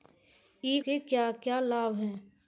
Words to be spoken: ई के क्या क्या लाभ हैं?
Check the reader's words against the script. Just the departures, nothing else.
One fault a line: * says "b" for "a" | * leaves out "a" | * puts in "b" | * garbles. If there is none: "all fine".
all fine